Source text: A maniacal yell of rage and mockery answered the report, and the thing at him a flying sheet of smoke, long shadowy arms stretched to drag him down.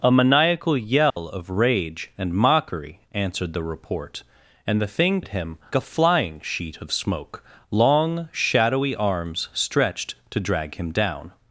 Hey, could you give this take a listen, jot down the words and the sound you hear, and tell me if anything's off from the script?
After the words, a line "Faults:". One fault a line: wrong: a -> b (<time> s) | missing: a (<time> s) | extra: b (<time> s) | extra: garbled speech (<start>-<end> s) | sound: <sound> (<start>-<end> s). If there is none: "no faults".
A maniacal yell of rage and mockery answered the report, and the thing at him a flying sheet of smoke, long shadowy arms stretched to drag him down.
Faults:
sound: dropout (1.1-1.2 s)